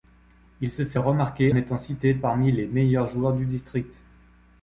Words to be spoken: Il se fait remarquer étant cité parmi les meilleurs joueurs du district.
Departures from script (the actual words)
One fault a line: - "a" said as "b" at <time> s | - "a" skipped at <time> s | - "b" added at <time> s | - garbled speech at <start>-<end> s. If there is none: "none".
none